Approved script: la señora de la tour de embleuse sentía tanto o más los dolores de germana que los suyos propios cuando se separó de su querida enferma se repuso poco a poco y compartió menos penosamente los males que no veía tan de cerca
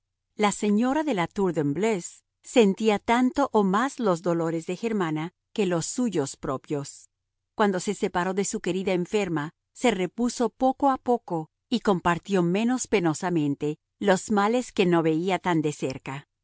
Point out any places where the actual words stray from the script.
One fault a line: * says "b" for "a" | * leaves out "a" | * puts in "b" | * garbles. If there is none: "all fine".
all fine